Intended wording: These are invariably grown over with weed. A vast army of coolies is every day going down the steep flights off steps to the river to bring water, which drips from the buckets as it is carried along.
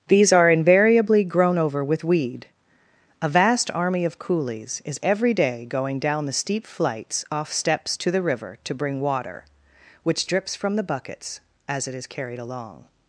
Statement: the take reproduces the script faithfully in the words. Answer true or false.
true